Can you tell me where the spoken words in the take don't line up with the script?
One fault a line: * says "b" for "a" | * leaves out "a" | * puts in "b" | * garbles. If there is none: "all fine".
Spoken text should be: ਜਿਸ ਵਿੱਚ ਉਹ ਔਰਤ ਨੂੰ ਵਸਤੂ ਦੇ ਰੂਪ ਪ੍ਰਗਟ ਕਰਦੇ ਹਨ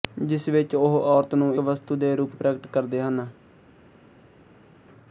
all fine